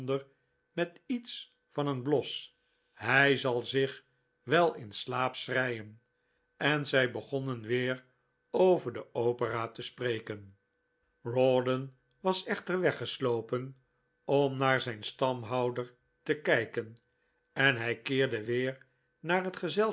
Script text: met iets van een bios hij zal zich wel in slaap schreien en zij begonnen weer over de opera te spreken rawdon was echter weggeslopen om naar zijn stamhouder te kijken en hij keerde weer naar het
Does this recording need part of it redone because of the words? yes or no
no